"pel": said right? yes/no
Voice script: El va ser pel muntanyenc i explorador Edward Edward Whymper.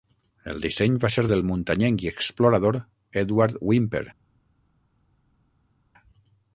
no